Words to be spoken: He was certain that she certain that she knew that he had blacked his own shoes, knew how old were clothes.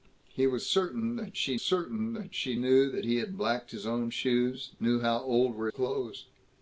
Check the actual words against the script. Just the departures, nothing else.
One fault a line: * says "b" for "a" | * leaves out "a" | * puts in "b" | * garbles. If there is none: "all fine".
all fine